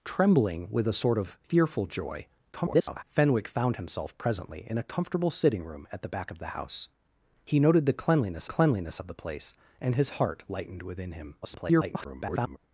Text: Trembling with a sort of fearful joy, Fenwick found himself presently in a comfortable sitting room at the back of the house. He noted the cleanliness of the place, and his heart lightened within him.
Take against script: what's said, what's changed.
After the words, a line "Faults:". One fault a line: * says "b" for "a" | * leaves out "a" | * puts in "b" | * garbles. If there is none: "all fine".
Trembling with a sort of fearful joy, [garbled] Fenwick found himself presently in a comfortable sitting room at the back of the house. He noted the cleanliness cleanliness of the place, and his heart lightened within him. [garbled]
Faults:
* garbles
* puts in "cleanliness"
* garbles